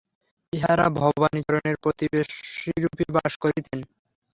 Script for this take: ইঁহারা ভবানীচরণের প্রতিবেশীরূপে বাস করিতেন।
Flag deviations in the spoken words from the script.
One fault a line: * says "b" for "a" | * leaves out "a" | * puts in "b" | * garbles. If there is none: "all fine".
all fine